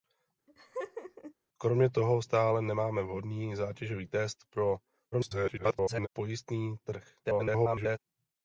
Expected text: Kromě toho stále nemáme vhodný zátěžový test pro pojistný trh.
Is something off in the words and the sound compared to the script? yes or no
yes